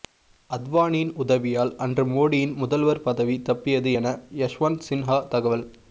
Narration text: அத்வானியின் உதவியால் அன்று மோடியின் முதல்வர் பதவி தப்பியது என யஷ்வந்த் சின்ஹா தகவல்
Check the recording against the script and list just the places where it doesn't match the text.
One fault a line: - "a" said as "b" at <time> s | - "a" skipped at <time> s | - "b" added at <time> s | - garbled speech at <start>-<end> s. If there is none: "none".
none